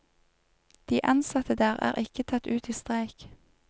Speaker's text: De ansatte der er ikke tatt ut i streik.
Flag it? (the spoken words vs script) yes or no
no